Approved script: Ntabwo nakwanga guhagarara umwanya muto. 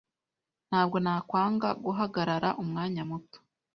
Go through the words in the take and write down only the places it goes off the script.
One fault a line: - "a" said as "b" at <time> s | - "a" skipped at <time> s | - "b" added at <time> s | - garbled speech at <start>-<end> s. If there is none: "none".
none